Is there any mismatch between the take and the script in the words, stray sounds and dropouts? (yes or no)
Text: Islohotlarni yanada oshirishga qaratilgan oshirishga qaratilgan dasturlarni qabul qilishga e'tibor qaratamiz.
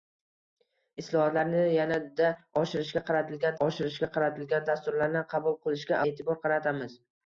no